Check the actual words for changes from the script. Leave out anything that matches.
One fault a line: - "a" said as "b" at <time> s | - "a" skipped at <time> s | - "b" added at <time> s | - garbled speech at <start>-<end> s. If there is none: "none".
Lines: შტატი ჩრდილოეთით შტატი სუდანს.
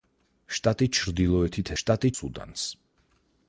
none